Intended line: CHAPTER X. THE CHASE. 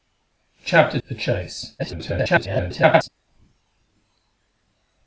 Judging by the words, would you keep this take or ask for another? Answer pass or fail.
fail